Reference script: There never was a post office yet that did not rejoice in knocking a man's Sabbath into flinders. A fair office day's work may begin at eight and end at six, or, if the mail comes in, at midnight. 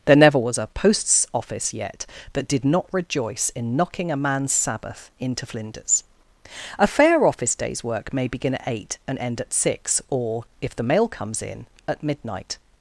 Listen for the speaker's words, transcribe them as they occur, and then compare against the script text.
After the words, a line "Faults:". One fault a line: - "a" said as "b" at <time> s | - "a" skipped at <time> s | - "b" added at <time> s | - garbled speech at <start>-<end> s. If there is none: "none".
There never was a posts office yet that did not rejoice in knocking a man's Sabbath into flinders. A fair office day's work may begin at eight and end at six, or, if the mail comes in, at midnight.
Faults:
- "post" said as "posts" at 0.7 s